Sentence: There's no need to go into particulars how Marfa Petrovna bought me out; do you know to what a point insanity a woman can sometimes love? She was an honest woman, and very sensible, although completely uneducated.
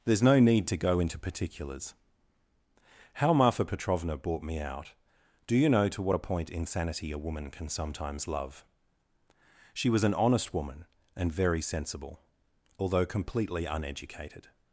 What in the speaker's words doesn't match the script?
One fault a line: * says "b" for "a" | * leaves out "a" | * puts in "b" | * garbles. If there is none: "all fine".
all fine